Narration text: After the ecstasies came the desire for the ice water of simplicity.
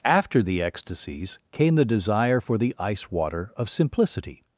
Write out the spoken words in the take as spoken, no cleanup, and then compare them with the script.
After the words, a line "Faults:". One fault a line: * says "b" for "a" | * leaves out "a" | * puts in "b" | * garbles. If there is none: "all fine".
After the ecstasies came the desire for the ice water of simplicity.
Faults:
all fine